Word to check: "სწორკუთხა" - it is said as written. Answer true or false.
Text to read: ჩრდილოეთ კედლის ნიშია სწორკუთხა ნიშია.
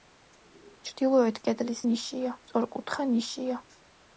true